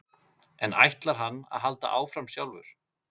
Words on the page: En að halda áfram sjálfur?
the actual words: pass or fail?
fail